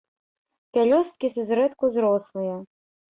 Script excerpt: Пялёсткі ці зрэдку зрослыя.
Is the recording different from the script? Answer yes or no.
no